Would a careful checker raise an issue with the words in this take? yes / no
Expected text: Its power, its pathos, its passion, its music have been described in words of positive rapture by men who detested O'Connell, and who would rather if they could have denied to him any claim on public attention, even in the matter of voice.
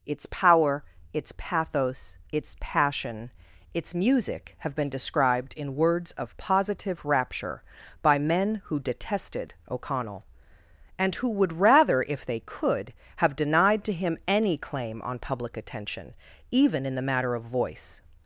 no